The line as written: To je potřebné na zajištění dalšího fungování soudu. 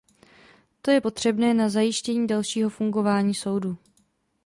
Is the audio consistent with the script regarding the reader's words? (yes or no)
yes